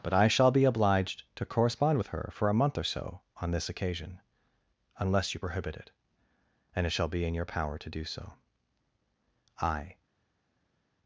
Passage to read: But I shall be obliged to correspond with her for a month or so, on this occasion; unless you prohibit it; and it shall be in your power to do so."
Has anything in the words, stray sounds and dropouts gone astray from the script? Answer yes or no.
yes